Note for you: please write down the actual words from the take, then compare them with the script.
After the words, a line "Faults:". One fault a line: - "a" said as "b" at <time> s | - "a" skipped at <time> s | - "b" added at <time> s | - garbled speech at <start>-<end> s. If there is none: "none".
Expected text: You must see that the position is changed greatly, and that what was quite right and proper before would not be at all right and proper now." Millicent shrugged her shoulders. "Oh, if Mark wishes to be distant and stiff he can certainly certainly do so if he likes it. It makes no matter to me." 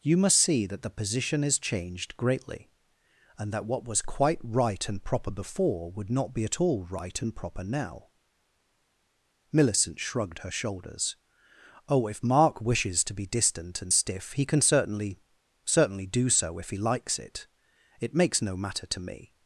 You must see that the position is changed greatly, and that what was quite right and proper before would not be at all right and proper now." Millicent shrugged her shoulders. "Oh, if Mark wishes to be distant and stiff he can certainly certainly do so if he likes it. It makes no matter to me."
Faults:
none